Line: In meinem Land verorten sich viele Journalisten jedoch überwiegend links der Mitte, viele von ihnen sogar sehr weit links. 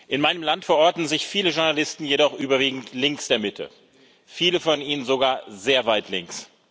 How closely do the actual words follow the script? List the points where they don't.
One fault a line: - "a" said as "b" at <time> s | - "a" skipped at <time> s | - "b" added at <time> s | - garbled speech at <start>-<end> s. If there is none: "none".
none